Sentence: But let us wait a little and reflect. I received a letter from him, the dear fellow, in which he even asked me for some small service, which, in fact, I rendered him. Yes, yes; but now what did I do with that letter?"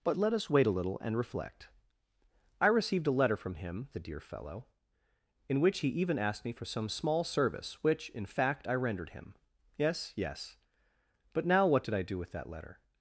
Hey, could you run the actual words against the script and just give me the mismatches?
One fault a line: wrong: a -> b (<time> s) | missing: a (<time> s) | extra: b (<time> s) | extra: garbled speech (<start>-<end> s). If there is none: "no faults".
no faults